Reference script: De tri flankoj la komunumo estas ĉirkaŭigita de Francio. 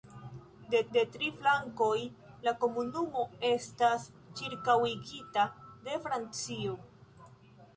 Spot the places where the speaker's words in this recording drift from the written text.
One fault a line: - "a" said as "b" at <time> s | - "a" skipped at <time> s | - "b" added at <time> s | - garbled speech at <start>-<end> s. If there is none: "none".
- "de" added at 0.9 s